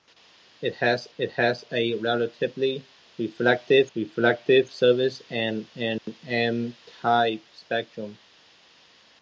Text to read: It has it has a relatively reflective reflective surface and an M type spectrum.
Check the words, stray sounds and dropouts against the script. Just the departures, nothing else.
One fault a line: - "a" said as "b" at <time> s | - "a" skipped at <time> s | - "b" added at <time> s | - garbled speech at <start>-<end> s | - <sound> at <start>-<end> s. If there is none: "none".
- dropout at 6.0-6.1 s